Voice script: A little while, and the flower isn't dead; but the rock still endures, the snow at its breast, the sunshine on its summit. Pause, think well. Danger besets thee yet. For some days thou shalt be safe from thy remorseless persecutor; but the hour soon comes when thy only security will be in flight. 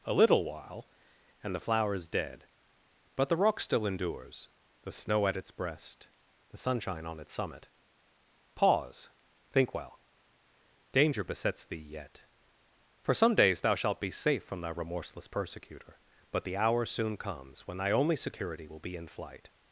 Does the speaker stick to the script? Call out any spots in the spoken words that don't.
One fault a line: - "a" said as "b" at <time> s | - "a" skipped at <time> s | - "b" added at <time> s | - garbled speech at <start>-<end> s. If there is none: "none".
- "isn't" said as "is" at 1.9 s